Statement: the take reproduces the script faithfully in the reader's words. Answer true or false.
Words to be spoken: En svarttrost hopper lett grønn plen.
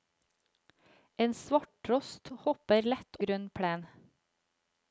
true